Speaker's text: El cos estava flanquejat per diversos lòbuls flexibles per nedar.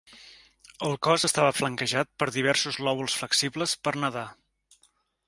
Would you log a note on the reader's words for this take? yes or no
no